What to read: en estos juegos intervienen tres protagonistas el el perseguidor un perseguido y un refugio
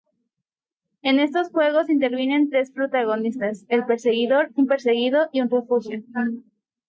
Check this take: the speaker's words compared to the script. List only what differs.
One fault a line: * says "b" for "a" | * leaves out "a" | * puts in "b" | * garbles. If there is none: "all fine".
* leaves out "el"